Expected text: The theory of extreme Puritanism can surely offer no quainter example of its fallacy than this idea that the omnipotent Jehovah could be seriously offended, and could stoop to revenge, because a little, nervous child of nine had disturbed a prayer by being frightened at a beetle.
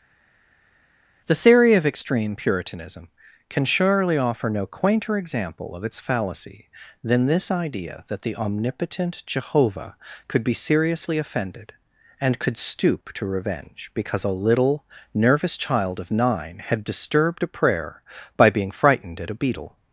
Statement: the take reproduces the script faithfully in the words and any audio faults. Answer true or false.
true